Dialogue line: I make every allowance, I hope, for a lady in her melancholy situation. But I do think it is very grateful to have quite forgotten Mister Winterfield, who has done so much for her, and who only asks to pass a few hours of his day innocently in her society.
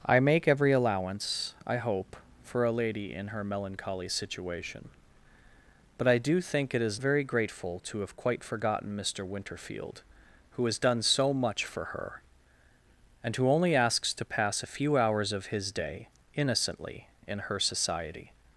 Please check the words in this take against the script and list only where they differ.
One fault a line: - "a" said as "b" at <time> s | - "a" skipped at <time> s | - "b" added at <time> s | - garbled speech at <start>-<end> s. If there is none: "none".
none